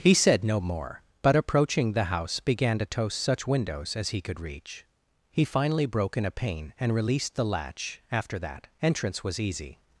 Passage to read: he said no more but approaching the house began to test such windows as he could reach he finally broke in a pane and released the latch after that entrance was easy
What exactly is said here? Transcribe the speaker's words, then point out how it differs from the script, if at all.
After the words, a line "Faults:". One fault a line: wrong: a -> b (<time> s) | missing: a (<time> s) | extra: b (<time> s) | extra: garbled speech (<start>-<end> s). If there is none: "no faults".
he said no more but approaching the house began to toast such windows as he could reach he finally broke in a pane and released the latch after that entrance was easy
Faults:
wrong: test -> toast (2.9 s)